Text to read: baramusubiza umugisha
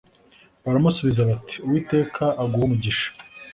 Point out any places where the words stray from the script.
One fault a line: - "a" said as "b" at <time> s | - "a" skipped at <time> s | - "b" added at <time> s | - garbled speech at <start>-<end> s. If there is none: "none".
- "bati uwiteka aguhe" added at 1.3 s